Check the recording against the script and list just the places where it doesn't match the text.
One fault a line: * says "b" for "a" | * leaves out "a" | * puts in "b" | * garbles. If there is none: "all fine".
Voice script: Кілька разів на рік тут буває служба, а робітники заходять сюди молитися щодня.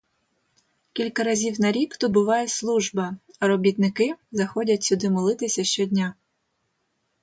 all fine